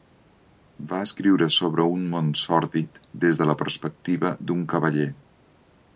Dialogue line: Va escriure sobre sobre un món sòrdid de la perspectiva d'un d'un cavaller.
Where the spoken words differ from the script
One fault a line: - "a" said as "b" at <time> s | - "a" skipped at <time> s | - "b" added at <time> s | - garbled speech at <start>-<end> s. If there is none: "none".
- "sobre" skipped at 1.9 s
- "des" added at 3.2 s
- "d'un" skipped at 4.6 s